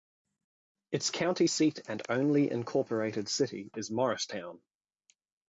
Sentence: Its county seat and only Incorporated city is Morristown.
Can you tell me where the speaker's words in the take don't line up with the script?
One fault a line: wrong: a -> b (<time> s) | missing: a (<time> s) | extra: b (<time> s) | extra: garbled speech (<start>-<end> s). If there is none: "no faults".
no faults